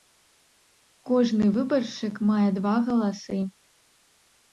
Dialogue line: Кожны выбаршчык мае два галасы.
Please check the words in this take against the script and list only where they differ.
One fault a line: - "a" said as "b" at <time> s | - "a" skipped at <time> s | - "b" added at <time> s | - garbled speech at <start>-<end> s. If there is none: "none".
none